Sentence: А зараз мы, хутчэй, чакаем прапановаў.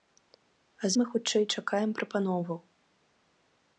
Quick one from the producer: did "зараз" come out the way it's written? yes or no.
no